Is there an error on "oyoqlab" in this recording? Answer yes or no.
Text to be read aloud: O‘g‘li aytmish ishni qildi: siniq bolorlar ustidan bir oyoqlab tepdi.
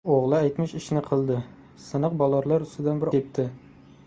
yes